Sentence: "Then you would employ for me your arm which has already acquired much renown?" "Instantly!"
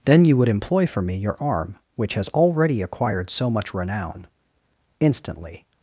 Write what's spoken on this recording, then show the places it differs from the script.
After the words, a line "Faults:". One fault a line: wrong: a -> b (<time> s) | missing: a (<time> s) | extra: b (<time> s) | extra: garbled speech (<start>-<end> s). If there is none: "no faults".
"Then you would employ for me your arm which has already acquired so much renown?" "Instantly!"
Faults:
extra: so (3.3 s)